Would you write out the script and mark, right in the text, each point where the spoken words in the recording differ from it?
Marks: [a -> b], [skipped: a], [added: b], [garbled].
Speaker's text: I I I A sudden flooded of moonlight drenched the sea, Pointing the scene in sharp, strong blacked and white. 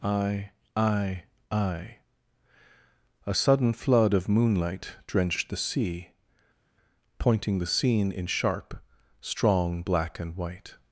I I I A sudden [flooded -> flood] of moonlight drenched the sea, Pointing the scene in sharp, strong [blacked -> black] and white.